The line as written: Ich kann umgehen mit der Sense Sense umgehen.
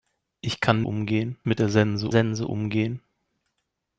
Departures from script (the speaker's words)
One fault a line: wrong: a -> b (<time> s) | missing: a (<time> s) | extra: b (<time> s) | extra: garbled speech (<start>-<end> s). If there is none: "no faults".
no faults